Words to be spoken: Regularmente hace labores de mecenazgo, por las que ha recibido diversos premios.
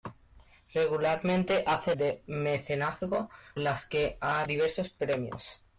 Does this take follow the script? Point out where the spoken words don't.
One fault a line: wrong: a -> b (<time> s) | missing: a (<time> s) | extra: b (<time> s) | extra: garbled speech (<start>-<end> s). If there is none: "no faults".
missing: labores (1.9 s)
missing: por (3.3 s)
missing: recibido (4.4 s)